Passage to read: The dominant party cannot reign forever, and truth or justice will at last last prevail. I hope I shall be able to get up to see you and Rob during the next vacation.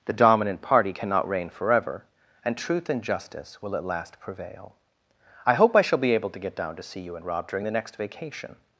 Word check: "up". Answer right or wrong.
wrong